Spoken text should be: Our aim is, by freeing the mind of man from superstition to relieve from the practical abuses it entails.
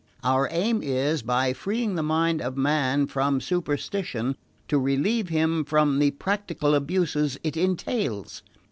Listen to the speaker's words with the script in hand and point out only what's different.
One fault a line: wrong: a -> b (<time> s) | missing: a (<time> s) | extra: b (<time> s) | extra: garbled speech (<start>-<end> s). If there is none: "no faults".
extra: him (5.3 s)